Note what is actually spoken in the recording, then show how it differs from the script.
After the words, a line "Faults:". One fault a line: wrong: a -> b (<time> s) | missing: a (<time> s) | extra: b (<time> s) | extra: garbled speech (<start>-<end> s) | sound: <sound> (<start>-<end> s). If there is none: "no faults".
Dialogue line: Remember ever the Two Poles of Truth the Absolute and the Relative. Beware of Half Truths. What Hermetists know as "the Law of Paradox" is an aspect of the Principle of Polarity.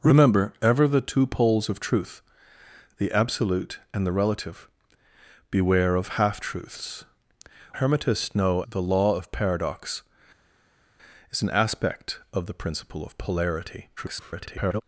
Remember ever the Two Poles of Truth the Absolute and the Relative. Beware of Half Truths. Hermetists know "the Law of Paradox" is an aspect of the Principle of Polarity. [garbled]
Faults:
missing: What (7.0 s)
missing: as (8.6 s)
extra: garbled speech (14.0-14.8 s)